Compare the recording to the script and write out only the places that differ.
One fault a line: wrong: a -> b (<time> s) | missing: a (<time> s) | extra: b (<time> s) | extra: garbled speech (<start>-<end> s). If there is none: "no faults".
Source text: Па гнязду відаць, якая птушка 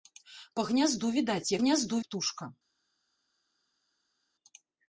wrong: якая -> гнязду (1.6 s)